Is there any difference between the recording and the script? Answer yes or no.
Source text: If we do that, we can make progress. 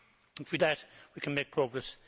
yes